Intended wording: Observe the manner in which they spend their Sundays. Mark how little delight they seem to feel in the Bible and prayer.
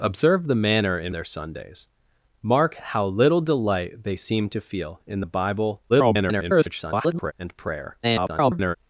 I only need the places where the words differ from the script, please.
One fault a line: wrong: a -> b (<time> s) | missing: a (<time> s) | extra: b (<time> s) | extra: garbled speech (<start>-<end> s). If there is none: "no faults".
missing: which they spend (1.1 s)
extra: garbled speech (5.9-7.3 s)
extra: garbled speech (8.0-8.8 s)